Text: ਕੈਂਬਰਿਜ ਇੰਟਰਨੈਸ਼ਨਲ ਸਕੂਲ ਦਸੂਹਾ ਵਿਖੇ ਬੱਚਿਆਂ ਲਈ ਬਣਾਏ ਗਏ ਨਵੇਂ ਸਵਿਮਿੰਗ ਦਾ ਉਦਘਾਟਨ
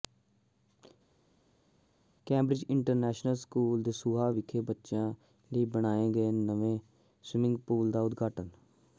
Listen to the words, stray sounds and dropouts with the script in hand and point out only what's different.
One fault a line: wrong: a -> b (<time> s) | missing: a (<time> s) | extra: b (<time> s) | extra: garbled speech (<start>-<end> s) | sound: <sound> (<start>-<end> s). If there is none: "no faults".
extra: ਪੂਲ (7.7 s)